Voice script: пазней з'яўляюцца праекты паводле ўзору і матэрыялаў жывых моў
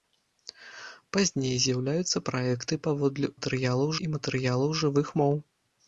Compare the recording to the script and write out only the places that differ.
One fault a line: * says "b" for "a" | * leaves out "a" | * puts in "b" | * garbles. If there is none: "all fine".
* says "матэрыялаў" for "ўзору"